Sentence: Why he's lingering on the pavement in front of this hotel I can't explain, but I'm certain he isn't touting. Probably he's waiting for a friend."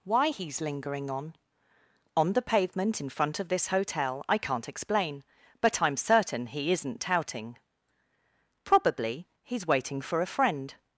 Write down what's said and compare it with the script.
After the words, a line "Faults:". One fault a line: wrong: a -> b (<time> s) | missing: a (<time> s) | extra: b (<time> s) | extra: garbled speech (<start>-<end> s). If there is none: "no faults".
Why he's lingering on on the pavement in front of this hotel I can't explain, but I'm certain he isn't touting. Probably he's waiting for a friend."
Faults:
extra: on (2.1 s)